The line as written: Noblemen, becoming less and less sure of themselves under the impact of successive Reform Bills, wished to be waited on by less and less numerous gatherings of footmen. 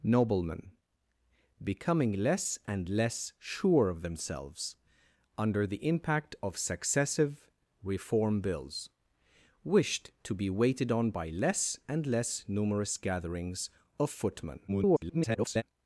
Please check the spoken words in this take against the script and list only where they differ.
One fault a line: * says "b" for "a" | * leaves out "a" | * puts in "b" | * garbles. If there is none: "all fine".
* garbles